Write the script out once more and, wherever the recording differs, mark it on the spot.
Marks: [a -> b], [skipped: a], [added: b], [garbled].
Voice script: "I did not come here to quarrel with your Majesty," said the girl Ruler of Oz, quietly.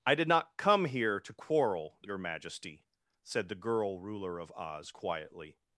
"I did not come here to quarrel [skipped: with] your Majesty," said the girl Ruler of Oz, quietly.